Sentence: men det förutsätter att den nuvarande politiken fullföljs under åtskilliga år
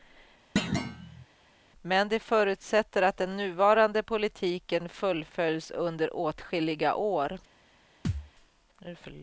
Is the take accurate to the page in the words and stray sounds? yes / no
no